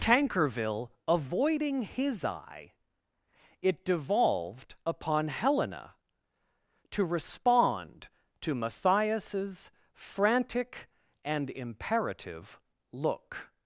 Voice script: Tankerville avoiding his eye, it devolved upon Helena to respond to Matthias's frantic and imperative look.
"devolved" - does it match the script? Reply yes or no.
yes